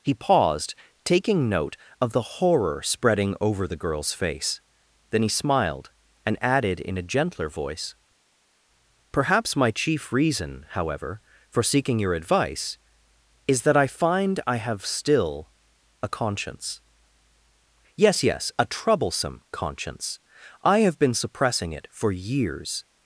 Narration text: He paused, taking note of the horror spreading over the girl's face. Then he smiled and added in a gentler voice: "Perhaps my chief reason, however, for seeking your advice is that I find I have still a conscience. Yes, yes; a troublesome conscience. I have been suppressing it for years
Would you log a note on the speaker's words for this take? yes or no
no